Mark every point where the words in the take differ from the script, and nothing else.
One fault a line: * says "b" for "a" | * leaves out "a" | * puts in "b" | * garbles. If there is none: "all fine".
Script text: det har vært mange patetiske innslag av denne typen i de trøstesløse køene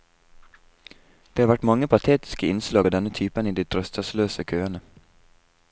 all fine